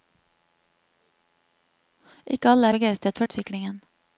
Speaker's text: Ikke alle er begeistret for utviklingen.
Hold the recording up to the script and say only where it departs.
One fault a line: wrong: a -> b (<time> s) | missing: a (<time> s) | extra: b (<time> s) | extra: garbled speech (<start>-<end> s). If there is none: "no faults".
no faults